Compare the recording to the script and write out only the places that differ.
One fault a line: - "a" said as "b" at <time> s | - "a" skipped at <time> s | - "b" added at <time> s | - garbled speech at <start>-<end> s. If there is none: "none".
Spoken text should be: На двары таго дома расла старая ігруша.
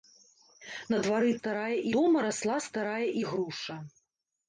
- "таго" said as "старая" at 1.4 s